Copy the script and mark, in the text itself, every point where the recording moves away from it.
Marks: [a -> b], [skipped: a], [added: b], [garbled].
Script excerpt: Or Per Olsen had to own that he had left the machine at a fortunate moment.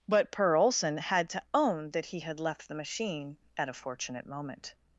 [Or -> But] Per Olsen had to own that he had left the machine at a fortunate moment.